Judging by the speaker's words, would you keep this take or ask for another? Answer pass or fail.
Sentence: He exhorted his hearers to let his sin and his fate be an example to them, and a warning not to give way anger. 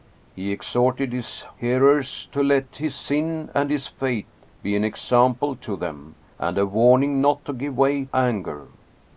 pass